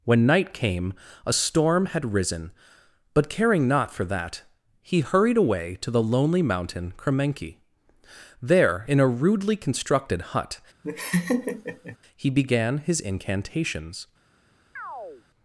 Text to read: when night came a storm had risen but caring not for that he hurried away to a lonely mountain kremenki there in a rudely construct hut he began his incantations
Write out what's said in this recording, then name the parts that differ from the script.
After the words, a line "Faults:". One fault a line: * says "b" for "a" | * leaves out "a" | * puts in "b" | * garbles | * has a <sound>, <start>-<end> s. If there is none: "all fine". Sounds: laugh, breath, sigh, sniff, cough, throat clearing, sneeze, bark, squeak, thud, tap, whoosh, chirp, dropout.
when night came a storm had risen but caring not for that he hurried away to the lonely mountain kremenki there in a rudely constructed hut he began his incantations
Faults:
* says "the" for "a"
* says "constructed" for "construct"
* has a laugh, 10.8-12.0 s
* has a chirp, 14.8-15.2 s